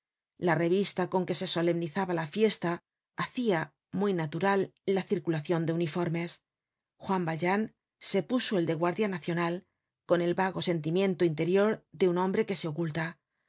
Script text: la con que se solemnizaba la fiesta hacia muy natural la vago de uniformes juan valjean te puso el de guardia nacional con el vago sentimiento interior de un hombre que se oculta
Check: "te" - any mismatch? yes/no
yes